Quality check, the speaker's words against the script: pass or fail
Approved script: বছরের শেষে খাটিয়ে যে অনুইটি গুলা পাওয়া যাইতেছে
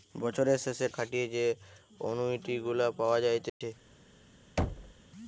pass